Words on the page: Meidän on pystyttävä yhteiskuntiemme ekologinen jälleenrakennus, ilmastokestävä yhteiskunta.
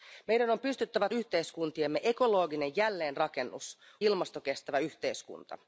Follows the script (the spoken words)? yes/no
yes